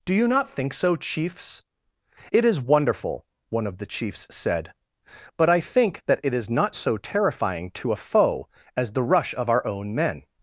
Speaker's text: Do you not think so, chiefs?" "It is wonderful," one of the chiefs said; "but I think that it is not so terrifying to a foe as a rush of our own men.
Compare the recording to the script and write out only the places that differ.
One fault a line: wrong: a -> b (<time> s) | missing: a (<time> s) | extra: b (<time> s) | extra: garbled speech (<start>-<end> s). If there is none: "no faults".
wrong: a -> the (8.9 s)